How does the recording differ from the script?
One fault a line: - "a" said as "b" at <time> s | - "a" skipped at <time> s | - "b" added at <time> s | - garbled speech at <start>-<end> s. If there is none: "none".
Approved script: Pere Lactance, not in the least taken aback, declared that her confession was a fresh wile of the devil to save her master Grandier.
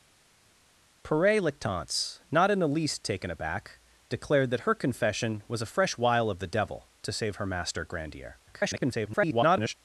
- garbled speech at 8.5-9.7 s